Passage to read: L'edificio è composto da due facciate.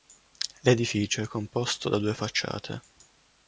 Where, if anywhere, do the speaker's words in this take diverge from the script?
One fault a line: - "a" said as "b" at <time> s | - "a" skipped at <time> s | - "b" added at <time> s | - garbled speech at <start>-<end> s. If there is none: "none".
none